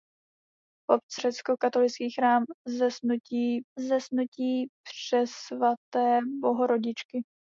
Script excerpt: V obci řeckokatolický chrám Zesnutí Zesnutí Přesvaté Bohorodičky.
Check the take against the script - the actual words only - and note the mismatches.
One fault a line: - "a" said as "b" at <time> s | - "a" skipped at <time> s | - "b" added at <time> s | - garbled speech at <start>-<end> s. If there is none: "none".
none